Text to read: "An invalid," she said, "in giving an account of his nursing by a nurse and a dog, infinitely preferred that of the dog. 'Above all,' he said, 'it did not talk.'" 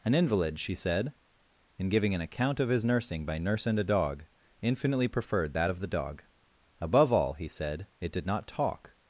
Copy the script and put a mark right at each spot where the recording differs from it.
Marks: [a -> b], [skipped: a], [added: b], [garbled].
"An invalid," she said, "in giving an account of his nursing by [skipped: a] nurse and a dog, infinitely preferred that of the dog. 'Above all,' he said, 'it did not talk.'"